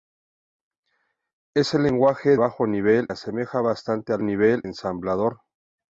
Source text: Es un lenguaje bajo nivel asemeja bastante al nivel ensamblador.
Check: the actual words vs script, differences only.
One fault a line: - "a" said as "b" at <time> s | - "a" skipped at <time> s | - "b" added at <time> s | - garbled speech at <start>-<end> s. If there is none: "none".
none